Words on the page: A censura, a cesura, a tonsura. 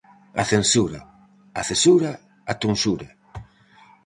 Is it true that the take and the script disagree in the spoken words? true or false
false